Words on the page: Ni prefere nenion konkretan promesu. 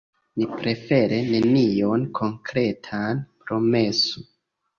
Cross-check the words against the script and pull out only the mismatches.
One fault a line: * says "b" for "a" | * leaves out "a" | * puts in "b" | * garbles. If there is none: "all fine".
all fine